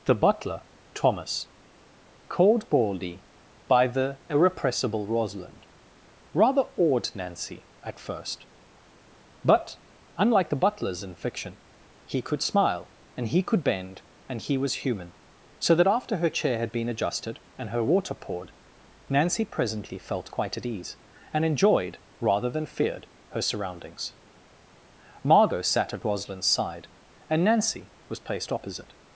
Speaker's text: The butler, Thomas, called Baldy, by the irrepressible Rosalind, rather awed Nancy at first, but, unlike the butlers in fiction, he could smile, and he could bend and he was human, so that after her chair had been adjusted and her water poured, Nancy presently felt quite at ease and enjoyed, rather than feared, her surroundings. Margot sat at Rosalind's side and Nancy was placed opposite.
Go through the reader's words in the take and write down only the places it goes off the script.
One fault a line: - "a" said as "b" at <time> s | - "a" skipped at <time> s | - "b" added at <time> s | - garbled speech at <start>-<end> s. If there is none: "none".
none